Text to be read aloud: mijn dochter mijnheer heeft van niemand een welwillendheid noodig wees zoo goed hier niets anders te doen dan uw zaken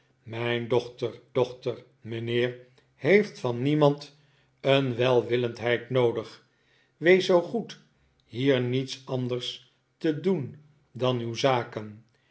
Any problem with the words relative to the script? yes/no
yes